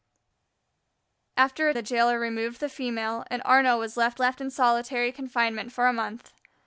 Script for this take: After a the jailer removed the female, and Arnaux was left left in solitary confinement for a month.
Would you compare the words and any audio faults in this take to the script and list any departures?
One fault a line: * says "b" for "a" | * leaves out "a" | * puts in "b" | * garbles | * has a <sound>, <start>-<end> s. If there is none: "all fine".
all fine